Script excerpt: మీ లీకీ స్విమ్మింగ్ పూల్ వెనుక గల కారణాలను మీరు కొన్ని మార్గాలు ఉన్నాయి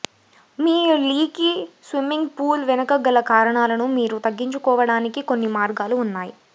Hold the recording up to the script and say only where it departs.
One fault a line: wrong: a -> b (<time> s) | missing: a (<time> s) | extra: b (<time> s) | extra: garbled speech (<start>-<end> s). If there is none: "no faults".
extra: తగ్గించుకోవడానికి (4.2 s)